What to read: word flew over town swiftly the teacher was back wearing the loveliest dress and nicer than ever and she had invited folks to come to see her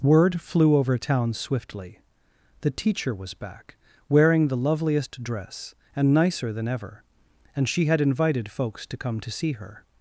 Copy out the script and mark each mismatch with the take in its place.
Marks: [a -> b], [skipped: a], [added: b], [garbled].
word flew over town swiftly the teacher was back wearing the loveliest dress and nicer than ever and she had invited folks to come to see her